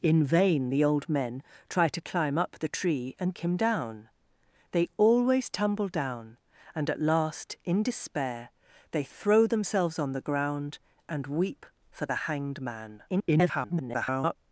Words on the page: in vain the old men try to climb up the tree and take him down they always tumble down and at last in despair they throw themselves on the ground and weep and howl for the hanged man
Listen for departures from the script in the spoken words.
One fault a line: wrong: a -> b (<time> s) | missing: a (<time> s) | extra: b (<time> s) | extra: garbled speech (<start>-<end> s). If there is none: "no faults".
missing: take (3.4 s)
missing: and howl (11.7 s)
extra: garbled speech (13.1-14.4 s)